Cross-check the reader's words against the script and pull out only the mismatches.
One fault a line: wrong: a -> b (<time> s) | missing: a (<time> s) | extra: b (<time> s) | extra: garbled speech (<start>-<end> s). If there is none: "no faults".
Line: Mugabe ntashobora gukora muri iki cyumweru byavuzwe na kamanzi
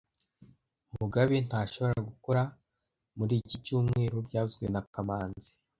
no faults